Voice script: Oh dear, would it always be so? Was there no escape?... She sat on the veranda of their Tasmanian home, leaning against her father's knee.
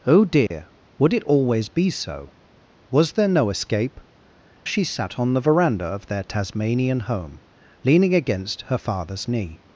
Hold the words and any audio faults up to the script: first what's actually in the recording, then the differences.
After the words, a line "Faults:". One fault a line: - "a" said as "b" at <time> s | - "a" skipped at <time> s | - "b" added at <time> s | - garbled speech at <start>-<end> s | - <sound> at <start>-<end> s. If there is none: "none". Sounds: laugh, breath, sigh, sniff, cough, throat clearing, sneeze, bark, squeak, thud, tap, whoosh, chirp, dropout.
Oh dear, would it always be so? Was there no escape?... She sat on the veranda of their Tasmanian home, leaning against her father's knee.
Faults:
- dropout at 0.5-0.5 s